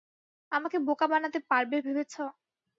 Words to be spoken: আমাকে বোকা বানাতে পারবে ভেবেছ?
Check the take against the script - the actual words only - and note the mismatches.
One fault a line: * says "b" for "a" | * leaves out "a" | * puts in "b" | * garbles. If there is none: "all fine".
all fine